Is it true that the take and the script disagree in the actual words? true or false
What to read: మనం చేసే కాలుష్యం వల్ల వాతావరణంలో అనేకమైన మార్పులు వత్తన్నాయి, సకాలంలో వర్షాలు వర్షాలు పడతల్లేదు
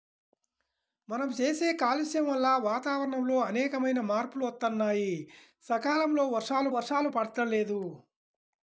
false